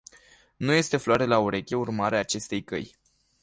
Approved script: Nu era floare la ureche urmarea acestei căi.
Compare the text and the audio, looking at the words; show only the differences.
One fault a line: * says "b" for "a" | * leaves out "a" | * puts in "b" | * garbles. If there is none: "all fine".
* says "este" for "era"